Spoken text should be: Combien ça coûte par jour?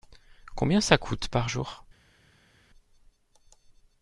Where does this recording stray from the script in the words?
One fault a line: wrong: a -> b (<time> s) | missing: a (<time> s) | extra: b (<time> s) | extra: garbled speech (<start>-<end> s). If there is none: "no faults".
no faults